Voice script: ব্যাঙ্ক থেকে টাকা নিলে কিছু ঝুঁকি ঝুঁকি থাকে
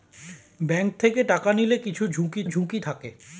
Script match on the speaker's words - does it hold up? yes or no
yes